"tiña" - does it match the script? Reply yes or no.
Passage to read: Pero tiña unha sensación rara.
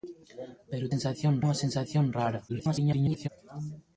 no